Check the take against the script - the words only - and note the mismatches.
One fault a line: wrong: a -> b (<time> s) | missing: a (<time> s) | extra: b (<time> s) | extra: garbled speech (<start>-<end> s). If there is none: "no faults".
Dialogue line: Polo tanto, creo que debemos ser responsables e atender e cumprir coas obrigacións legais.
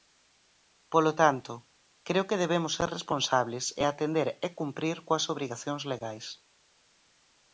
no faults